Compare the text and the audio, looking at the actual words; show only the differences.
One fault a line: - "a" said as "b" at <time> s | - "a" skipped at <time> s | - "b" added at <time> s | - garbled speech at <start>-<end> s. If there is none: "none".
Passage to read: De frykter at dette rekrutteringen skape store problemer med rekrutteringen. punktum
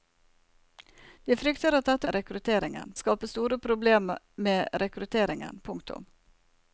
none